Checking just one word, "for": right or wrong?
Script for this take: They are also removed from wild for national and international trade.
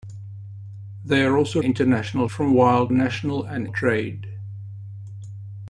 wrong